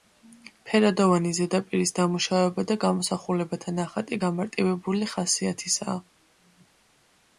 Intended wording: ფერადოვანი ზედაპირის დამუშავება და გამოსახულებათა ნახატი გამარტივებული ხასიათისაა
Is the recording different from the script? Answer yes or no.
no